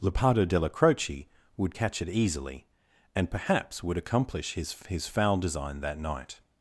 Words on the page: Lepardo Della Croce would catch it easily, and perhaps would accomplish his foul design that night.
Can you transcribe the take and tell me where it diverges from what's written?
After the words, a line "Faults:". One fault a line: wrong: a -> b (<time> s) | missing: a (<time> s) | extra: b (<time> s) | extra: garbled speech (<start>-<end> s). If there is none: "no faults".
Lepardo Della Croce would catch it easily, and perhaps would accomplish his his foul design that night.
Faults:
extra: his (4.9 s)